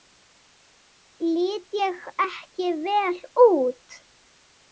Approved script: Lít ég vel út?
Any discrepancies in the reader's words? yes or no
yes